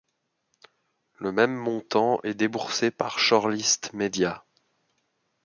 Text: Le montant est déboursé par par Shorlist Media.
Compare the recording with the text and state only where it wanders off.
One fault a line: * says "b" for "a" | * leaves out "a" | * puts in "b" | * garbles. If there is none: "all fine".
* puts in "même"
* leaves out "par"